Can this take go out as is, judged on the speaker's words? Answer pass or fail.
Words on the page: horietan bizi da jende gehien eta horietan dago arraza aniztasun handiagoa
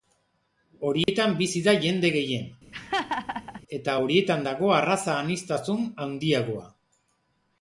pass